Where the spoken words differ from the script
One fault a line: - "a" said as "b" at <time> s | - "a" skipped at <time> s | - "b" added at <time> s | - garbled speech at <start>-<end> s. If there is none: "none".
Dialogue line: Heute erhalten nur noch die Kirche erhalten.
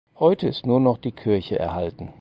- "erhalten" said as "ist" at 0.5 s